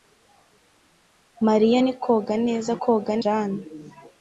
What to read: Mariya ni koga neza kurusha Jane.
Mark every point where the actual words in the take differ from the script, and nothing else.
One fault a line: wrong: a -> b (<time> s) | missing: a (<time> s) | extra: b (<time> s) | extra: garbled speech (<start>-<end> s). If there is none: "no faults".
wrong: kurusha -> koga (2.8 s)